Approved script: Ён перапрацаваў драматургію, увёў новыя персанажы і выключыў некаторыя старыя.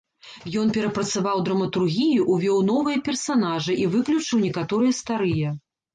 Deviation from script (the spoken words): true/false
false